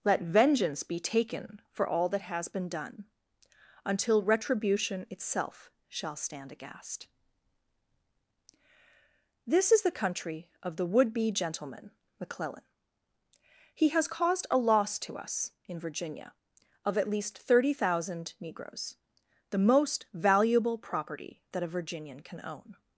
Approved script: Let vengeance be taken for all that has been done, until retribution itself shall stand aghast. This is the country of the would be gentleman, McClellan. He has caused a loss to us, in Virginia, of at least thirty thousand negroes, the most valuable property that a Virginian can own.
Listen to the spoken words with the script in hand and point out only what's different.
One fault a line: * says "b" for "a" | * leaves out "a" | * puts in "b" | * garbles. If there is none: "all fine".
all fine